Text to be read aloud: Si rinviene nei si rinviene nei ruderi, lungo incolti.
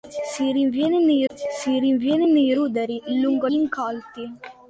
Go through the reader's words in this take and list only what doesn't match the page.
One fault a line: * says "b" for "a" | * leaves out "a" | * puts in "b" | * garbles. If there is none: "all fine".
all fine